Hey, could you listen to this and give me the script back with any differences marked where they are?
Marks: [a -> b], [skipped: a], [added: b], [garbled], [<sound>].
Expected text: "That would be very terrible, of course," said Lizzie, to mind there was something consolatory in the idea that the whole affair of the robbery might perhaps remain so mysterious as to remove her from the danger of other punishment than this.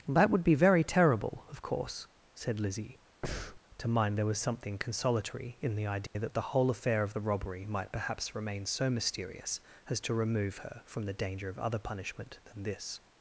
"That would be very terrible, of course," said Lizzie, [breath] to mind there was something consolatory in the idea [dropout] that the whole affair of the robbery might perhaps remain so mysterious as to remove her from the danger of other punishment than this.